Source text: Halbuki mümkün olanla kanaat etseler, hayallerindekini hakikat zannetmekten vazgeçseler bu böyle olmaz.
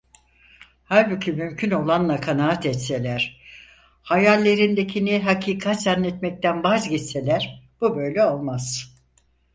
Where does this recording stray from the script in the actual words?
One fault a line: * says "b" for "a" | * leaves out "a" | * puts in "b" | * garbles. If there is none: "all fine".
all fine